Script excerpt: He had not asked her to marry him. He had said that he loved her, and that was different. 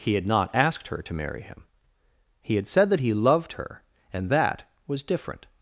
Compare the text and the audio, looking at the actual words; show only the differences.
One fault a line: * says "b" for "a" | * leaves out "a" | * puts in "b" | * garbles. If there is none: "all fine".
all fine